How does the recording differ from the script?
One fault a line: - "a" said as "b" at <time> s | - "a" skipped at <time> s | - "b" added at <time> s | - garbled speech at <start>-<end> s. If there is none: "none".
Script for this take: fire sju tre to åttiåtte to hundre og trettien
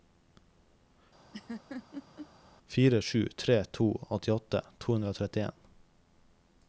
none